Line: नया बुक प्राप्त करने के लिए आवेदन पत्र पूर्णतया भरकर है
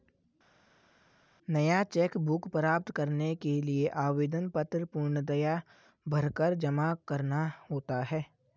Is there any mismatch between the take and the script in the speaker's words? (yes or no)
yes